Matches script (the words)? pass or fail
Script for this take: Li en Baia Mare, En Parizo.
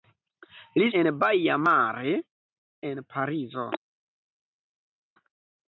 pass